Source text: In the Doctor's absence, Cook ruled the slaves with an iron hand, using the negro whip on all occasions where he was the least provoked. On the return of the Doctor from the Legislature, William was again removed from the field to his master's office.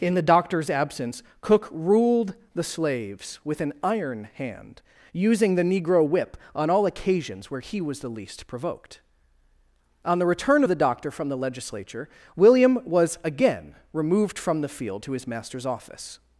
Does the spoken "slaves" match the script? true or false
true